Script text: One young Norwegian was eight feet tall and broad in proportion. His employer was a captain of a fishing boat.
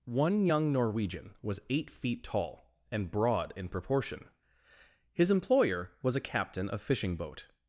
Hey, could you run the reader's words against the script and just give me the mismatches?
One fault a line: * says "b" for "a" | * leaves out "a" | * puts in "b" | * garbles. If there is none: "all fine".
* leaves out "a"